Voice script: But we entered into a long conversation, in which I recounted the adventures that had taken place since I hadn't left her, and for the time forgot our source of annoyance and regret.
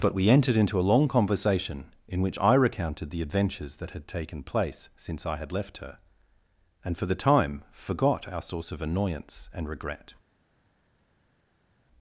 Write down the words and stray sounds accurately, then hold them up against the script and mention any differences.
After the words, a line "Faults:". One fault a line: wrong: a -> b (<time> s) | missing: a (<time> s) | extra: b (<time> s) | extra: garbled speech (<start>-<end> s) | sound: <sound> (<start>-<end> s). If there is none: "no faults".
But we entered into a long conversation, in which I recounted the adventures that had taken place since I had left her, and for the time forgot our source of annoyance and regret.
Faults:
wrong: hadn't -> had (5.4 s)